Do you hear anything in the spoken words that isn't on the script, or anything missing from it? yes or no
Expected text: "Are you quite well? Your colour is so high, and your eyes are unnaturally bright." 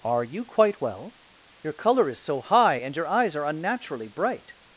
no